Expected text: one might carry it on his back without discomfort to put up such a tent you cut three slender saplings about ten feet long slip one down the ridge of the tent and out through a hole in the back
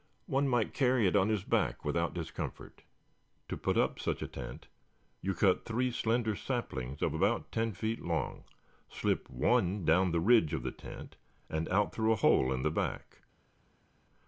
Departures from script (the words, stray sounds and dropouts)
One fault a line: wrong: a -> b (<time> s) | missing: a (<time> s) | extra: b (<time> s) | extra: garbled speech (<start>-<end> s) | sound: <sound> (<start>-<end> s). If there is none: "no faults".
extra: of (7.0 s)